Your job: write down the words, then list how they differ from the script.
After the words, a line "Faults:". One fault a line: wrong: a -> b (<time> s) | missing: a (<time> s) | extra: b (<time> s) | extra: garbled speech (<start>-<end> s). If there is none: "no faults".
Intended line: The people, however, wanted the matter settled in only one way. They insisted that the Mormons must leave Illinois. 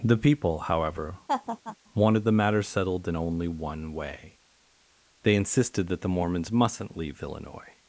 The people, however, wanted the matter settled in only one way. They insisted that the Mormons mustn't leave Illinois.
Faults:
wrong: must -> mustn't (6.5 s)